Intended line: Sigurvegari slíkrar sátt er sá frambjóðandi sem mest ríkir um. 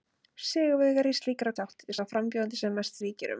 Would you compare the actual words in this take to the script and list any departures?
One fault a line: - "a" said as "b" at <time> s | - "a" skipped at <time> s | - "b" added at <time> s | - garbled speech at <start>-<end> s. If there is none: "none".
none